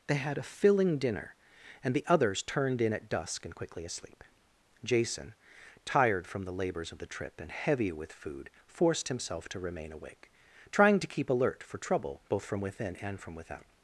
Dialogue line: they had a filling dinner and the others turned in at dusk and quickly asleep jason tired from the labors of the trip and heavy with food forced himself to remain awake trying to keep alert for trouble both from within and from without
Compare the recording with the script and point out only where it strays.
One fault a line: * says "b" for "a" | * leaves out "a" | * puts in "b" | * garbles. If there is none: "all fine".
all fine